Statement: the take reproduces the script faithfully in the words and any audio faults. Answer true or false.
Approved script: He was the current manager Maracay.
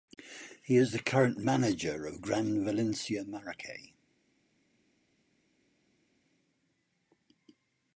false